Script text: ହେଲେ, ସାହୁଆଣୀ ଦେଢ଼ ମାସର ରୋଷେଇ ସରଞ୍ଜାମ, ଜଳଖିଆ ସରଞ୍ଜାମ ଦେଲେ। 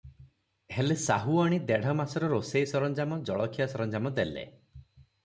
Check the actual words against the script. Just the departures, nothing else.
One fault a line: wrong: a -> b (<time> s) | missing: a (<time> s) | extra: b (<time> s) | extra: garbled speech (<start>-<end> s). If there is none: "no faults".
no faults